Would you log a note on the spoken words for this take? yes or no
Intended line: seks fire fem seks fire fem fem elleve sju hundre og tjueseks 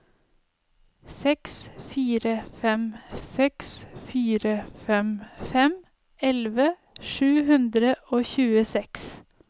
no